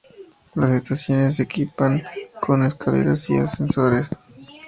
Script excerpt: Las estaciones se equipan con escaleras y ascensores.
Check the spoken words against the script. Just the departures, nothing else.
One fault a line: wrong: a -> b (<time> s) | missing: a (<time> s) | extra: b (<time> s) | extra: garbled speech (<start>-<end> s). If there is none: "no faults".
no faults